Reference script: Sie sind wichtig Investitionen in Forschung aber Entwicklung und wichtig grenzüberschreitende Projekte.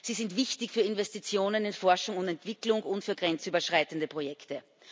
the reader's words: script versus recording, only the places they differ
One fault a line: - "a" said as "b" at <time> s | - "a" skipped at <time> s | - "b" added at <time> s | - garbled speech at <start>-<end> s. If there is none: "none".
- "für" added at 0.7 s
- "aber" said as "und" at 2.2 s
- "wichtig" said as "für" at 3.0 s